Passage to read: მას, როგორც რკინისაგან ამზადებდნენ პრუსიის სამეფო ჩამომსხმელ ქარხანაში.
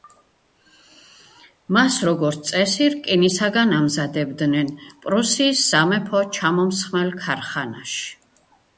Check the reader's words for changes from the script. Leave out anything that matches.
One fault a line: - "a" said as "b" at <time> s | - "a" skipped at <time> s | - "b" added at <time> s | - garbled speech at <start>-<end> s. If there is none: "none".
- "წესი" added at 2.5 s